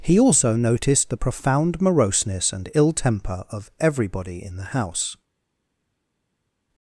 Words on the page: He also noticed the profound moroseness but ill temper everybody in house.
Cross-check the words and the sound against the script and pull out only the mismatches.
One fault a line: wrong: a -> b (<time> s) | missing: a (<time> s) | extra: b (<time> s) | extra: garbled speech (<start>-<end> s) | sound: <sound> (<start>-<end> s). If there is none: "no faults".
wrong: but -> and (2.5 s)
extra: of (3.5 s)
extra: the (4.6 s)